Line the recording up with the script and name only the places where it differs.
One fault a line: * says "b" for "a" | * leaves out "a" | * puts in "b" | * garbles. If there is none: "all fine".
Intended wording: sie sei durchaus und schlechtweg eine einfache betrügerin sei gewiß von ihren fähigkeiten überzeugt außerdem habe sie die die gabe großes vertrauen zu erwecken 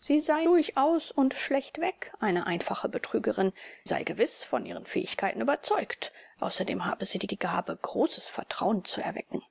all fine